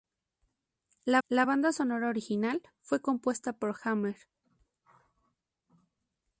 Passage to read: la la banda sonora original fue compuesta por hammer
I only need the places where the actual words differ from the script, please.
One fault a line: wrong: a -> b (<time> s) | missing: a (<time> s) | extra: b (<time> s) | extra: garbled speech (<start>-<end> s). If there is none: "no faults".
no faults